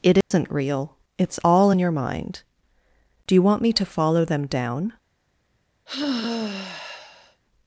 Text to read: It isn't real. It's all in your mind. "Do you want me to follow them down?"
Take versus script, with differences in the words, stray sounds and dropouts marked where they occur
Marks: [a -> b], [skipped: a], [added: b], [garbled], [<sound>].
It isn't [dropout] real. It's all in your mind. "Do you want me to follow them down?" [sigh]